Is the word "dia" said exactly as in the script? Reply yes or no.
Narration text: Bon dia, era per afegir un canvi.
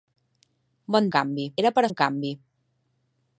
no